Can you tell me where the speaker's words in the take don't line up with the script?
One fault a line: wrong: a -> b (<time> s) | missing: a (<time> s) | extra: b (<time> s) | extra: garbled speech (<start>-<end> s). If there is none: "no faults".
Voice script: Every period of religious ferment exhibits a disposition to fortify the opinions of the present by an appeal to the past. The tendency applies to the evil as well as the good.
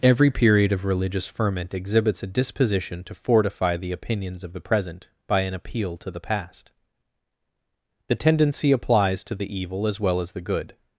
no faults